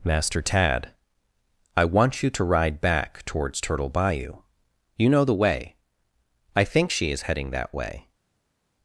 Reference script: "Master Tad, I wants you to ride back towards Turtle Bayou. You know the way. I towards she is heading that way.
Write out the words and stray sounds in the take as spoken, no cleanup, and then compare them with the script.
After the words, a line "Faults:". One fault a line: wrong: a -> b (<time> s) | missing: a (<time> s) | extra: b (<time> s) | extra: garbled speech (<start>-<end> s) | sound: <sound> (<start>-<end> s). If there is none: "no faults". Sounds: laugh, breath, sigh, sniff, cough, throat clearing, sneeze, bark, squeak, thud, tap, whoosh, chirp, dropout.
"Master Tad, I want you to ride back towards Turtle Bayou. You know the way. I think she is heading that way.
Faults:
wrong: wants -> want (1.9 s)
wrong: towards -> think (6.6 s)